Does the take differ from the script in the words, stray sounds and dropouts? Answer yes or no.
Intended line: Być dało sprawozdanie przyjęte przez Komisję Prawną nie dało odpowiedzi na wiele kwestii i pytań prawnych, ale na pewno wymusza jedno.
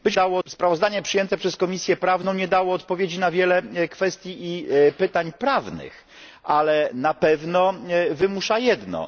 no